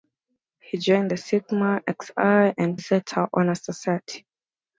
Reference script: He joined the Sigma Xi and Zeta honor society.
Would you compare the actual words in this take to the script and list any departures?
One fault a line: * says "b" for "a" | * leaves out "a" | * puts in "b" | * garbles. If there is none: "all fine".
all fine